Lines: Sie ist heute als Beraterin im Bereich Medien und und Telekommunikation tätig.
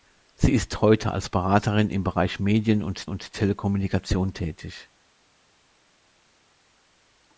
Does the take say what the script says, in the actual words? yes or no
yes